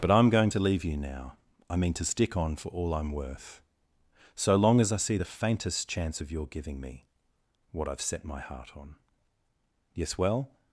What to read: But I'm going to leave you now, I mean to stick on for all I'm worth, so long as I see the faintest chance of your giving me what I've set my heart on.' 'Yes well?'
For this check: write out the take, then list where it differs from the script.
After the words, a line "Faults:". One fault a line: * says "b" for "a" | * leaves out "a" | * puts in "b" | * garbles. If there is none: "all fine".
But I'm going to leave you now, I mean to stick on for all I'm worth, so long as I see the faintest chance of your giving me what I've set my heart on.' 'Yes well?'
Faults:
all fine